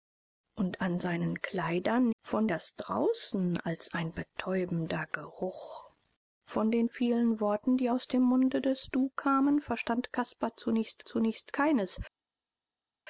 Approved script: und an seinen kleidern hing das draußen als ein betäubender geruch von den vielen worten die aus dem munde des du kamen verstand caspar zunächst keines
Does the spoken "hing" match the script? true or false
false